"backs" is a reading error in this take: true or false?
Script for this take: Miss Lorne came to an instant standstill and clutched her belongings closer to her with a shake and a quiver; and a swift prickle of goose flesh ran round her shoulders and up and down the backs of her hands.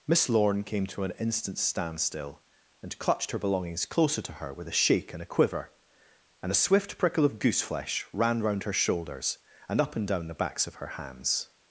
false